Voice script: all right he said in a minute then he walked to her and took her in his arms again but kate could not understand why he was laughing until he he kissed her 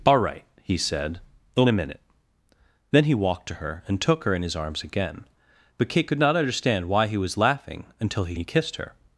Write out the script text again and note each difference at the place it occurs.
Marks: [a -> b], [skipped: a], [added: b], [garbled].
all right he said in a minute then he walked to her and took her in his arms again but kate could not understand why he was laughing until he he kissed her